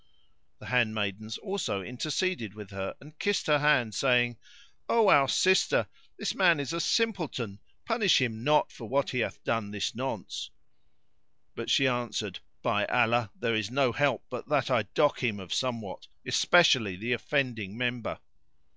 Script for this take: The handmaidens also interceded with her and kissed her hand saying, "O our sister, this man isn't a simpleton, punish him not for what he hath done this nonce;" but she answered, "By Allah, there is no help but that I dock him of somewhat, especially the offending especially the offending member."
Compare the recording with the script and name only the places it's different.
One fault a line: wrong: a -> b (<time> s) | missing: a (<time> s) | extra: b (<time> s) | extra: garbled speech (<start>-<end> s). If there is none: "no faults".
wrong: isn't -> is (6.6 s)
missing: especially the offending (17.8 s)